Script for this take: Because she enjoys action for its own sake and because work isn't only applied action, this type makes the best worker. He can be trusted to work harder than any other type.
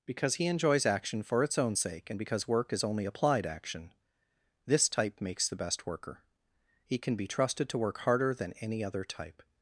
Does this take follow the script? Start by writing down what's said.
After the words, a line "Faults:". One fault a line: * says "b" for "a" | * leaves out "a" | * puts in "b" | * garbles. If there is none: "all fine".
Because he enjoys action for its own sake and because work is only applied action, this type makes the best worker. He can be trusted to work harder than any other type.
Faults:
* says "he" for "she"
* says "is" for "isn't"